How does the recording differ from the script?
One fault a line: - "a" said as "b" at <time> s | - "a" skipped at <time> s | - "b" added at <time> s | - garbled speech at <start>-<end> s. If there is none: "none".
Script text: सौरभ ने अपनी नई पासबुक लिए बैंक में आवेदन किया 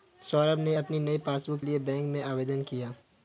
none